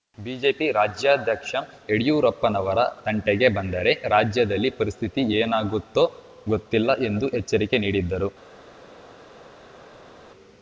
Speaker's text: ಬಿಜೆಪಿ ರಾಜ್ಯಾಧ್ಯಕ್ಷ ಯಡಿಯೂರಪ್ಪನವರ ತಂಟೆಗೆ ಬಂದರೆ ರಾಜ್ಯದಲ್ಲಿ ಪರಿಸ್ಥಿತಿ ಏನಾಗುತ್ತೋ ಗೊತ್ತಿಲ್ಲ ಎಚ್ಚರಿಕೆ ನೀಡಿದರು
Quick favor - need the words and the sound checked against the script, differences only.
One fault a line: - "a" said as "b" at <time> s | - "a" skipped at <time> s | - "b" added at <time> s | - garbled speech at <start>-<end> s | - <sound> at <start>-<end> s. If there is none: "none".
- "ಎಂದು" added at 7.1 s